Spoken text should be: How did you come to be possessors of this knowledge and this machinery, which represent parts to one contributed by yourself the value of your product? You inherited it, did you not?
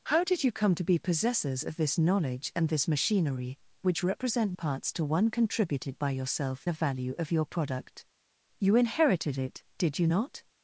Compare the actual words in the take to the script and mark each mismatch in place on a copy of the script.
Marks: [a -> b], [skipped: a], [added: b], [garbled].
How did you come to be possessors of this knowledge and this machinery, which represent parts to one contributed by yourself the value of your product? You inherited it, did you not?